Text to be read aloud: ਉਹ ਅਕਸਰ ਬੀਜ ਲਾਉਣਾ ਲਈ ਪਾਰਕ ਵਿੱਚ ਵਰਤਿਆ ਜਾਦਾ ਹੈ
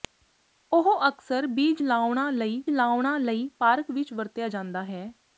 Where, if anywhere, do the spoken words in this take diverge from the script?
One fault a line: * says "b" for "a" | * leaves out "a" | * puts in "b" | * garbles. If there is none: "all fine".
* puts in "ਲਾਉਣਾ ਲਈ"